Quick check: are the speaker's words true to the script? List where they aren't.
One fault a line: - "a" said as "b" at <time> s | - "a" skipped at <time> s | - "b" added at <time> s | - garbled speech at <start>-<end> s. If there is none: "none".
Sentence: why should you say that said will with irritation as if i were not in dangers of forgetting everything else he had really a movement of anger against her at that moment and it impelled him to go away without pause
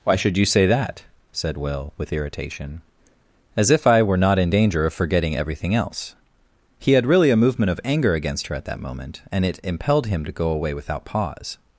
- "dangers" said as "danger" at 4.5 s